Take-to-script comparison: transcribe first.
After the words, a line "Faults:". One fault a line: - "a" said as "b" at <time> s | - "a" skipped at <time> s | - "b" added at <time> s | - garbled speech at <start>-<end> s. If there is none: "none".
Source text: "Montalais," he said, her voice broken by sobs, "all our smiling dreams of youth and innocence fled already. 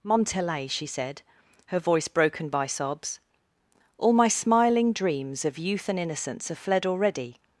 "Montalais," she said, her voice broken by sobs, "all my smiling dreams of youth and innocence have fled already.
Faults:
- "he" said as "she" at 0.7 s
- "our" said as "my" at 4.1 s
- "have" added at 6.5 s